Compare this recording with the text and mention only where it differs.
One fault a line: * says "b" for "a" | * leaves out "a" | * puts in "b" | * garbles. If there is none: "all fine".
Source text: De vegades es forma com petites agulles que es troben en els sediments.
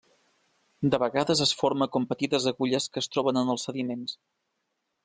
all fine